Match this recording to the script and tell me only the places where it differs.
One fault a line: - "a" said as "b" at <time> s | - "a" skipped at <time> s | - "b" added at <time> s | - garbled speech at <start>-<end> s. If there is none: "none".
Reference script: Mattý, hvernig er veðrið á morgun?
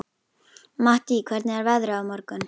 none